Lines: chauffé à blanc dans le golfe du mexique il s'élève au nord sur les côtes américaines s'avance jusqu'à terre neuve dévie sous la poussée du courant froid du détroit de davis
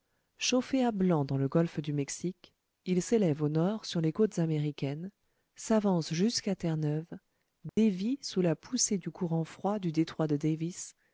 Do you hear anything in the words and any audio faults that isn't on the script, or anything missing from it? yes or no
yes